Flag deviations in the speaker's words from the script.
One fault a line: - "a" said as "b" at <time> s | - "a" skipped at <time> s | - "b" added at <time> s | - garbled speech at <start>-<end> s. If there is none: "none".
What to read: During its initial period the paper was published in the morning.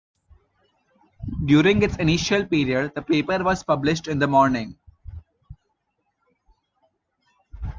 none